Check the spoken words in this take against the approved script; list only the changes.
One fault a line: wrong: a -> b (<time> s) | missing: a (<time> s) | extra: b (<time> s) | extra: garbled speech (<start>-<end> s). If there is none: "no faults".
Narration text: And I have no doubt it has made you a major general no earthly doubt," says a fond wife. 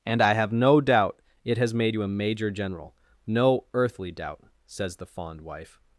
wrong: a -> the (5.0 s)